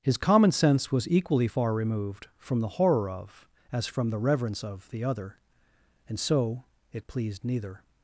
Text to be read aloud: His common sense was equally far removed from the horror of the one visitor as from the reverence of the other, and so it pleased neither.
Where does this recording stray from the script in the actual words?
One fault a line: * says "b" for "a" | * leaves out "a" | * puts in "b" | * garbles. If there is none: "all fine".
* leaves out "the one visitor"